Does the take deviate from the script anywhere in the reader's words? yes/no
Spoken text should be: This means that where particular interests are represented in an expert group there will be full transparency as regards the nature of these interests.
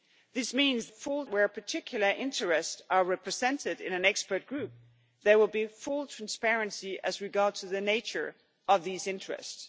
yes